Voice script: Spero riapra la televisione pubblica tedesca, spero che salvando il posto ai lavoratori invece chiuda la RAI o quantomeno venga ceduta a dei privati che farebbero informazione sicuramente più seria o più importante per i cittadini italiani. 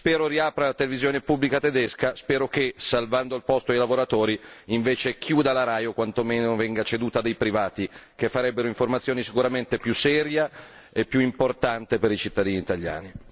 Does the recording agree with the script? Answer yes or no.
no